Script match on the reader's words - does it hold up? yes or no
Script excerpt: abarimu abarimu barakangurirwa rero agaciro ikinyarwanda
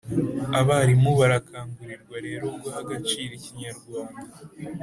no